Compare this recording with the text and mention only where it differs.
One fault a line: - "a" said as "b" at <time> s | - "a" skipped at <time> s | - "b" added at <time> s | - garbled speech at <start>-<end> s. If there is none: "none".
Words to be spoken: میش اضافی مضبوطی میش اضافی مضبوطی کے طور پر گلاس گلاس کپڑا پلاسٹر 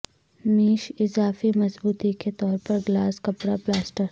- "میش اضافی مضبوطی" skipped at 2.1 s
- "گلاس" skipped at 3.2 s